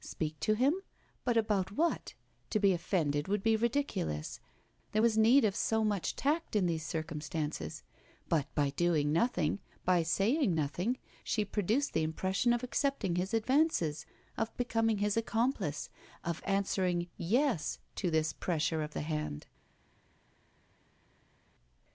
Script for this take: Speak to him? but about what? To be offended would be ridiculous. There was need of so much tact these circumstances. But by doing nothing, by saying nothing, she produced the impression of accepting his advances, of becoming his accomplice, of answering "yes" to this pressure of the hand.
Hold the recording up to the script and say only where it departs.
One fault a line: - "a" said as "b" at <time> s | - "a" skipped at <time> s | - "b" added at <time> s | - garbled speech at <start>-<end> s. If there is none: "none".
- "in" added at 6.5 s